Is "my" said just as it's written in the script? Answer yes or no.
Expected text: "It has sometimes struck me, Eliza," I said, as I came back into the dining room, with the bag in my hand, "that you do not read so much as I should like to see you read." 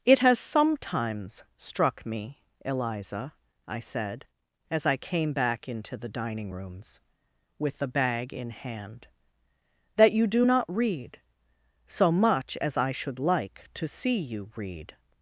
no